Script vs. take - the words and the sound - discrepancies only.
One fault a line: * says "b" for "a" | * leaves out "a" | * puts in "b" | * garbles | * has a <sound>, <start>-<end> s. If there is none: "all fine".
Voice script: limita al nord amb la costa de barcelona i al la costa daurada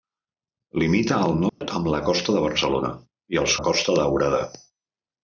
* has a dropout, 1.5-1.6 s